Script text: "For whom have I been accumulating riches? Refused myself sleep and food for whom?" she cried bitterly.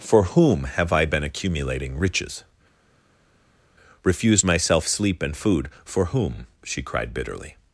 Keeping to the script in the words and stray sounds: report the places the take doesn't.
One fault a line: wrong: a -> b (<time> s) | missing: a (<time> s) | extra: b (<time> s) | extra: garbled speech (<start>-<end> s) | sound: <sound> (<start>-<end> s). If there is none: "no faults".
no faults